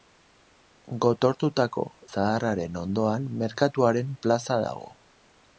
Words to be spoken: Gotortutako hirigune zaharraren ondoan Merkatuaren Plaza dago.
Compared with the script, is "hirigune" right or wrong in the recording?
wrong